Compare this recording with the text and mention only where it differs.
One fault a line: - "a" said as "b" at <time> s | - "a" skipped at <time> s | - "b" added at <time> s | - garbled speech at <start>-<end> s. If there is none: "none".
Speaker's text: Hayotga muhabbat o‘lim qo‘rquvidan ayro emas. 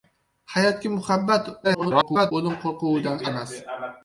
- garbled speech at 1.6-2.3 s
- "ayro" skipped at 3.2 s